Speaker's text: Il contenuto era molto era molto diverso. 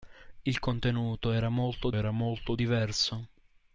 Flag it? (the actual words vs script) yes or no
no